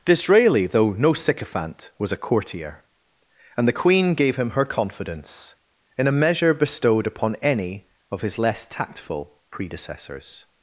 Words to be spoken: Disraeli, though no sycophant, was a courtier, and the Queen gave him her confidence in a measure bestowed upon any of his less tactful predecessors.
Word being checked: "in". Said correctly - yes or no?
yes